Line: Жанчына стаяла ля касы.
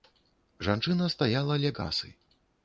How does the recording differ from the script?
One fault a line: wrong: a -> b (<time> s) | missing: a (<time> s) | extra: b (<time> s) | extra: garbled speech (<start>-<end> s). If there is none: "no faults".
no faults